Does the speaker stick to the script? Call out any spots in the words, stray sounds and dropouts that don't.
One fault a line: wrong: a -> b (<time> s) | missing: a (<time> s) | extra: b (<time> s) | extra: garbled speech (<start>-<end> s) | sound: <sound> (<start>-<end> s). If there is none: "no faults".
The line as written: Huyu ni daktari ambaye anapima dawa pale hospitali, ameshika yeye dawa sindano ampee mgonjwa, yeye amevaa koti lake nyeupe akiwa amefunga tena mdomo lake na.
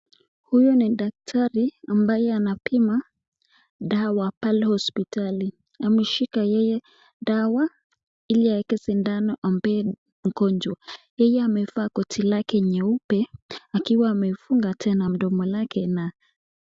extra: ili aweke (8.3 s)